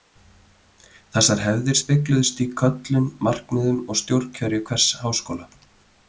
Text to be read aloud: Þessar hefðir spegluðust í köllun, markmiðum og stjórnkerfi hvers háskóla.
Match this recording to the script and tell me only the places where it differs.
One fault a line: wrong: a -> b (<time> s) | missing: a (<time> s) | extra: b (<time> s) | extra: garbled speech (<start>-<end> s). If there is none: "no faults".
no faults